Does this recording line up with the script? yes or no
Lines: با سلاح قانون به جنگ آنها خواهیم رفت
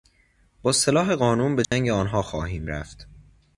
yes